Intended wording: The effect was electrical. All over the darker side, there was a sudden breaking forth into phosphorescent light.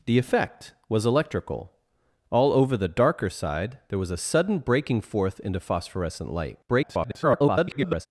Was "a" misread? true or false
false